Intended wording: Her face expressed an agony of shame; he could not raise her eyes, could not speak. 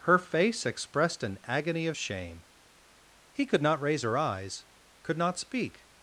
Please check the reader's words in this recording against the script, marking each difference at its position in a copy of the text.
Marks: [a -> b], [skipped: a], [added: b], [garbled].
Her face expressed an agony of shame; he could not raise her eyes, could not speak.